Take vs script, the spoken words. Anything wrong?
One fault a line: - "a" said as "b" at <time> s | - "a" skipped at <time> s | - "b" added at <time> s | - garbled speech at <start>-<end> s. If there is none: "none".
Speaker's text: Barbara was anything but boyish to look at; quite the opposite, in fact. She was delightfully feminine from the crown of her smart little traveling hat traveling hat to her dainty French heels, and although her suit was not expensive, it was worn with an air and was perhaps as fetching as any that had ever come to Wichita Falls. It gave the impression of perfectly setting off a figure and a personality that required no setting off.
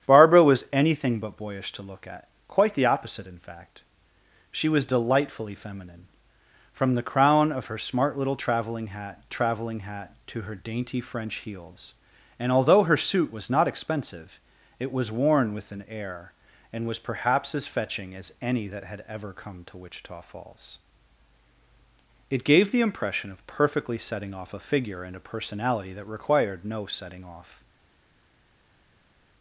none